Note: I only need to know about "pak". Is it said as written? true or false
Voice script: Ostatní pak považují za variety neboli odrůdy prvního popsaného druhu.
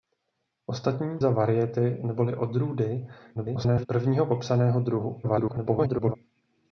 false